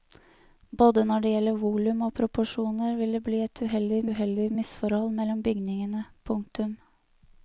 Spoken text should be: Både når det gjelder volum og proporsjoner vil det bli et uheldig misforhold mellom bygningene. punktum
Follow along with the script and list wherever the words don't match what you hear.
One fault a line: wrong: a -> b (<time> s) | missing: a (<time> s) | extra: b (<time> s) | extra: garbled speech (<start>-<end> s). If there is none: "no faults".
extra: uheldig (4.1 s)